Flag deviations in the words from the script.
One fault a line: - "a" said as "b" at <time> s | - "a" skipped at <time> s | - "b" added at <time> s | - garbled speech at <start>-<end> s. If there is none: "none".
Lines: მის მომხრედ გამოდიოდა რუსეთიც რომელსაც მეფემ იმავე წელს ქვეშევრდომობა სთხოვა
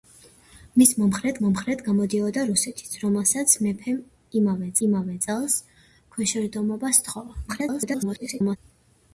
- "მომხრედ" added at 1.4 s
- "იმავე" added at 4.9 s
- garbled speech at 7.5-8.6 s